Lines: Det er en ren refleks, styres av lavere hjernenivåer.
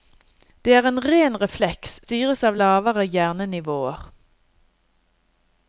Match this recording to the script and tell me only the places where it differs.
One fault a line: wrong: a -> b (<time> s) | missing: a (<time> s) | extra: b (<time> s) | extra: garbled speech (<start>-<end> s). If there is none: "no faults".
no faults